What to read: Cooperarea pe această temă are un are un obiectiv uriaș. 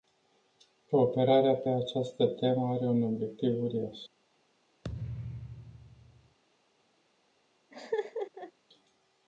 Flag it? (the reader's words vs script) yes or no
yes